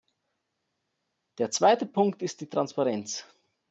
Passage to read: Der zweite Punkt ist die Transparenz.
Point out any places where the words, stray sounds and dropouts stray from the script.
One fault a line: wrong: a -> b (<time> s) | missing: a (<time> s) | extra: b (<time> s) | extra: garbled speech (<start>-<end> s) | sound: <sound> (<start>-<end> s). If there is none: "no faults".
no faults